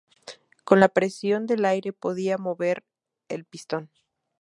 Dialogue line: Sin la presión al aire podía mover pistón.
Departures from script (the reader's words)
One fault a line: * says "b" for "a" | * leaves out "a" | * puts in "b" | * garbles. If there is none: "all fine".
* says "Con" for "Sin"
* says "del" for "al"
* puts in "el"